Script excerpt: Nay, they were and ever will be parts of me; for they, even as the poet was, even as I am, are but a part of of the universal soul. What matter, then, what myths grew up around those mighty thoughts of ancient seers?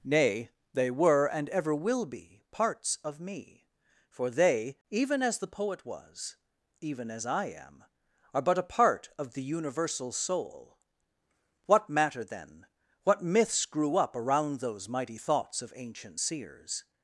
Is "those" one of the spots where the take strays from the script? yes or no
no